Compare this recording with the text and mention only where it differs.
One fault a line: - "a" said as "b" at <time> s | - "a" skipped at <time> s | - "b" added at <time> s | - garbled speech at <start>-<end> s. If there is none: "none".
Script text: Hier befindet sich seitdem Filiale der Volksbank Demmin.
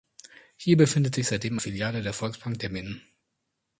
none